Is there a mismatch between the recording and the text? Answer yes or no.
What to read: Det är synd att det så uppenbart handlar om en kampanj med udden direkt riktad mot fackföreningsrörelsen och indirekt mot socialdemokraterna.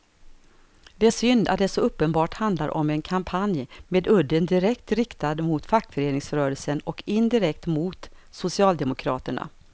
no